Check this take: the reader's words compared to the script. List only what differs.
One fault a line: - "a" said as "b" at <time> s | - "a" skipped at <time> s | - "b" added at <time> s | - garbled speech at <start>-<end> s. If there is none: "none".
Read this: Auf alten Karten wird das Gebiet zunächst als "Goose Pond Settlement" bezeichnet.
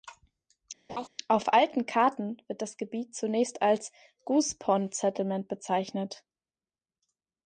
none